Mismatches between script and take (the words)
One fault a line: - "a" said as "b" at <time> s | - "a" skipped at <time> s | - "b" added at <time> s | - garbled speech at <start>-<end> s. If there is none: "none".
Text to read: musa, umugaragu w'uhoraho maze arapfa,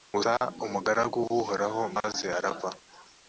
none